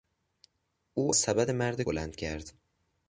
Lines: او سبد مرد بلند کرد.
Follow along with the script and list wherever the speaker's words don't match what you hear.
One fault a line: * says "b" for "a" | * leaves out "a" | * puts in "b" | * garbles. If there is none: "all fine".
all fine